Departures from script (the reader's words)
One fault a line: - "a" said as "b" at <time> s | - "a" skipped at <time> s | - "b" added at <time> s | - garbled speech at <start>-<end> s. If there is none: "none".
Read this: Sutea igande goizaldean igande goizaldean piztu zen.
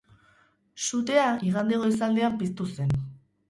- "igande goizaldean" skipped at 2.4 s